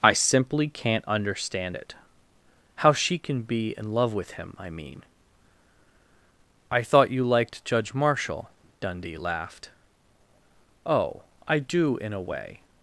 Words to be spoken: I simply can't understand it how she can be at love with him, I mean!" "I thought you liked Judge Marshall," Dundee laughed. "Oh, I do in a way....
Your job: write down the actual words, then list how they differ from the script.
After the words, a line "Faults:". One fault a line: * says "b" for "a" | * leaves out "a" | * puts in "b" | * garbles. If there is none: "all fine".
I simply can't understand it how she can be in love with him, I mean!" "I thought you liked Judge Marshall," Dundee laughed. "Oh, I do in a way....
Faults:
* says "in" for "at"